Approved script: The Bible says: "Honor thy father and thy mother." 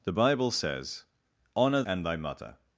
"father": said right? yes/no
no